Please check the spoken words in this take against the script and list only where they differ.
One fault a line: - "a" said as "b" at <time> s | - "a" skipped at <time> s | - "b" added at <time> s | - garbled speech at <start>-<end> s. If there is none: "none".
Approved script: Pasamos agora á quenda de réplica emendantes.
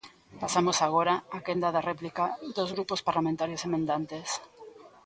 - "dos grupos parlamentarios" added at 2.6 s